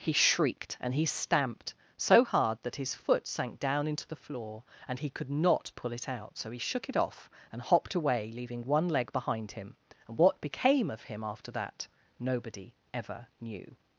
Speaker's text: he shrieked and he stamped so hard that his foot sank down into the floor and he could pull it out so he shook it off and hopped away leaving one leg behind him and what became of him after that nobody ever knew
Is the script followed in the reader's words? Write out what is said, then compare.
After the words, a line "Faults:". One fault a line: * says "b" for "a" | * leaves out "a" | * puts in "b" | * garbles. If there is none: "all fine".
he shrieked and he stamped so hard that his foot sank down into the floor and he could not pull it out so he shook it off and hopped away leaving one leg behind him and what became of him after that nobody ever knew
Faults:
* puts in "not"